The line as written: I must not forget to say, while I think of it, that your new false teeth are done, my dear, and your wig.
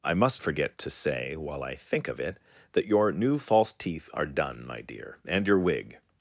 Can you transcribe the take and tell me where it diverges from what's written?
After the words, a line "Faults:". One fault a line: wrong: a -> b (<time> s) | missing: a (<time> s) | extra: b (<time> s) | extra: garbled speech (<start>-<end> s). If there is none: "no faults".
I must forget to say, while I think of it, that your new false teeth are done, my dear, and your wig.
Faults:
missing: not (0.4 s)